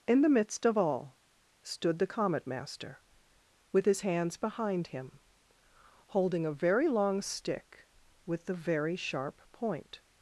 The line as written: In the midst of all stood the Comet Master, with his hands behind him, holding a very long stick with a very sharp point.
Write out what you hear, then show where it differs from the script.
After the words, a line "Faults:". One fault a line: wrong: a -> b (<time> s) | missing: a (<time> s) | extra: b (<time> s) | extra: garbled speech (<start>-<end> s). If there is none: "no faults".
In the midst of all stood the Comet Master, with his hands behind him, holding a very long stick with the very sharp point.
Faults:
wrong: a -> the (8.5 s)